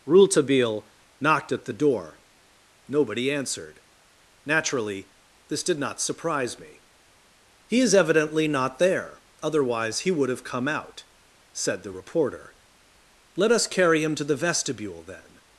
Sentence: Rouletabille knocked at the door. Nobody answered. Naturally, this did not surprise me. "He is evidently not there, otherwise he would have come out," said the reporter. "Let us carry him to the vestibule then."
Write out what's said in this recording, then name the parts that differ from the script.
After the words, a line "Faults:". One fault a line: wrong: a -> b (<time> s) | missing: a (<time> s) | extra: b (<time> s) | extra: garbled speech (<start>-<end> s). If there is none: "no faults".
Rouletabille knocked at the door. Nobody answered. Naturally, this did not surprise me. "He is evidently not there, otherwise he would have come out," said the reporter. "Let us carry him to the vestibule then."
Faults:
no faults